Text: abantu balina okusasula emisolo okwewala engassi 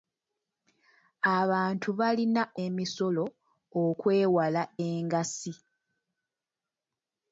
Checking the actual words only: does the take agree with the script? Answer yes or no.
no